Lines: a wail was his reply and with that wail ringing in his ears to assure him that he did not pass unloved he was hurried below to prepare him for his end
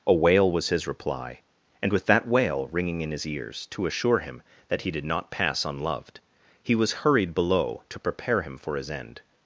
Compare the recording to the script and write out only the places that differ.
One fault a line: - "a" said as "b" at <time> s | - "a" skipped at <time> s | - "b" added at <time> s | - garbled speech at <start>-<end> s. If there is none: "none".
none